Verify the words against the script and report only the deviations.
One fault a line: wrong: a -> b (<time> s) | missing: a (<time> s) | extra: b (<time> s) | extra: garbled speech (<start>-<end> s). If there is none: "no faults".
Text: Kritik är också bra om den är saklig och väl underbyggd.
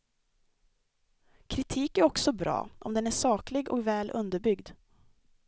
no faults